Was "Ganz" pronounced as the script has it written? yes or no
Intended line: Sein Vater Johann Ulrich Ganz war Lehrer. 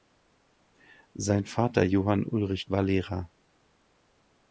no